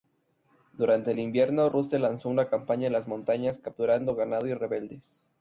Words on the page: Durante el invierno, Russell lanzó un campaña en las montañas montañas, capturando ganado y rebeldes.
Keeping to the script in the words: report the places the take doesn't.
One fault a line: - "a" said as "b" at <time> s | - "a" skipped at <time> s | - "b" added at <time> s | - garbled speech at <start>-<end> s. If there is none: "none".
- "un" said as "una" at 2.3 s
- "montañas" skipped at 3.6 s